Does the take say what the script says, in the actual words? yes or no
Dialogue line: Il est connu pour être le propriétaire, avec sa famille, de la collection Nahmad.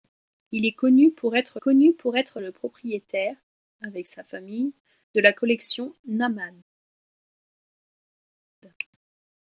no